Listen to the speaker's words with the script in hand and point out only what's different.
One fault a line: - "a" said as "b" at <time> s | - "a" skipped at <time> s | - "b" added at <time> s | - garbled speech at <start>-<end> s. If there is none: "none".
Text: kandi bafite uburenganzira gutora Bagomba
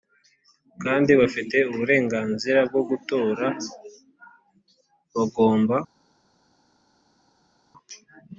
- "bwo" added at 2.7 s